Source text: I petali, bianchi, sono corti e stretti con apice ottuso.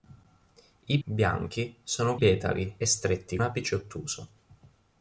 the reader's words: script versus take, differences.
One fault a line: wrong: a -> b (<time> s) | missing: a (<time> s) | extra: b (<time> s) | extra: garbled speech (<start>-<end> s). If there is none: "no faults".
missing: petali (1.0 s)
wrong: corti -> petali (2.2 s)
missing: con (3.4 s)